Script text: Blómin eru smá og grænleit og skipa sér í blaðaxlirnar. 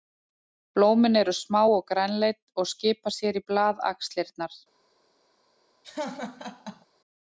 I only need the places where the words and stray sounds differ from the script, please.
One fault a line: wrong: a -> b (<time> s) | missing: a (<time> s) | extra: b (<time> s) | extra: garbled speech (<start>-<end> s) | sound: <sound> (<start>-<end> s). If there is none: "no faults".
sound: laugh (5.8-6.9 s)